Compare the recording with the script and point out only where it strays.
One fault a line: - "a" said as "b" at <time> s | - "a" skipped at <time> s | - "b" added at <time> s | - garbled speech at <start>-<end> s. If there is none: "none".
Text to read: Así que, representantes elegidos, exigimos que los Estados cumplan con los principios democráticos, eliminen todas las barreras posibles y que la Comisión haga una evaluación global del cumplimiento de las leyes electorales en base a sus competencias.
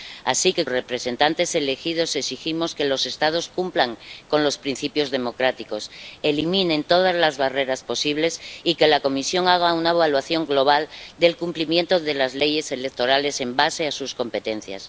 none